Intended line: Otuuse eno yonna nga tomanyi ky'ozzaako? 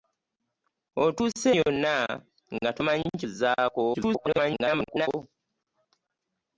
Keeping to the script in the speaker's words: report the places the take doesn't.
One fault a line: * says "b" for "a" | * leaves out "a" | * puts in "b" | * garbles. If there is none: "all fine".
* leaves out "eno"
* garbles